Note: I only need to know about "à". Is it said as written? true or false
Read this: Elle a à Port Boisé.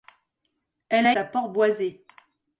true